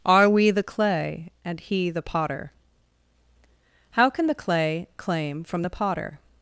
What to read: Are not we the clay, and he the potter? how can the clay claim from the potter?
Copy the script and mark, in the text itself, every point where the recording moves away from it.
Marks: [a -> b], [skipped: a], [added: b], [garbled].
Are [skipped: not] we the clay, and he the potter? how can the clay claim from the potter?